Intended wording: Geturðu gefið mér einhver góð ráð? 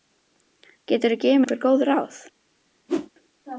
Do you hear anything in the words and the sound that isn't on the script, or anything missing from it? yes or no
yes